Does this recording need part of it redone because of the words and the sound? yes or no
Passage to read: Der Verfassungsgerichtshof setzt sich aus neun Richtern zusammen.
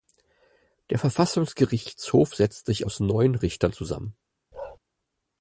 yes